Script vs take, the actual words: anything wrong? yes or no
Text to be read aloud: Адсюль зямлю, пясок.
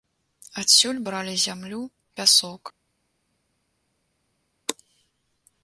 yes